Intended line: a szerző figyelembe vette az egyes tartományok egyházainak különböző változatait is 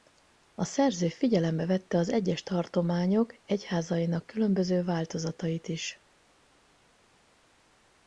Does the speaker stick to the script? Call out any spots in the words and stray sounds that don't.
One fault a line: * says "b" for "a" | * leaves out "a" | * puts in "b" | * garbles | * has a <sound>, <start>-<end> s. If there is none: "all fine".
all fine